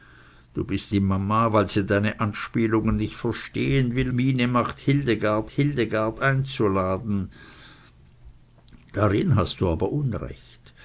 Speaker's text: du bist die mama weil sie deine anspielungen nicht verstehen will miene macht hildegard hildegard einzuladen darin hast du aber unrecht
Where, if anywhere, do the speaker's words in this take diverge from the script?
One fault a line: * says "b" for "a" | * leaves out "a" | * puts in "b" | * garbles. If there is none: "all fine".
all fine